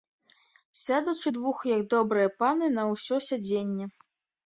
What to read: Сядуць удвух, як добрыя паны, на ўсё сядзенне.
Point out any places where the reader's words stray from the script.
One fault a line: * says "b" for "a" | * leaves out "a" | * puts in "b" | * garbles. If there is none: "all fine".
all fine